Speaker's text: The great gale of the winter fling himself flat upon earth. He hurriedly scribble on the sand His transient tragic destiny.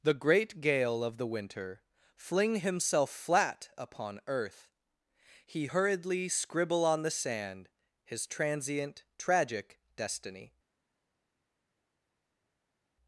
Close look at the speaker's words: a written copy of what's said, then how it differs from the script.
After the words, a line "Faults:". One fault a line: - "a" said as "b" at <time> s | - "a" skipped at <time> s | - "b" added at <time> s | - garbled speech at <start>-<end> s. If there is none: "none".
The great gale of the winter fling himself flat upon earth. He hurriedly scribble on the sand His transient tragic destiny.
Faults:
none